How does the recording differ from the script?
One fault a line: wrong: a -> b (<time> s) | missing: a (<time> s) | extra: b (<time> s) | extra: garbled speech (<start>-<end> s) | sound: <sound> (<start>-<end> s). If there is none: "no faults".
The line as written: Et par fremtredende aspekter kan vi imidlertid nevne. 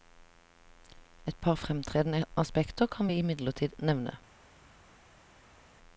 no faults